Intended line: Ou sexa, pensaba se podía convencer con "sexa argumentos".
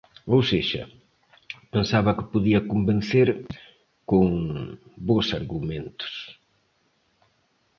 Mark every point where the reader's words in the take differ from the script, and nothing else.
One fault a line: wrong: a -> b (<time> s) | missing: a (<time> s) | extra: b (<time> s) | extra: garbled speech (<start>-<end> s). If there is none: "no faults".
wrong: se -> que (2.2 s)
wrong: sexa -> bos (5.1 s)